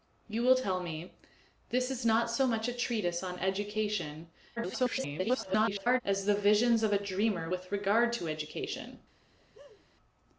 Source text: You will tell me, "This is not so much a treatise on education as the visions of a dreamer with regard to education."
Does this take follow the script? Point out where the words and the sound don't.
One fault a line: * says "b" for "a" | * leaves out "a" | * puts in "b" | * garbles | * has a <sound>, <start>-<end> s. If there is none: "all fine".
* garbles
* has a laugh, 9.4-9.9 s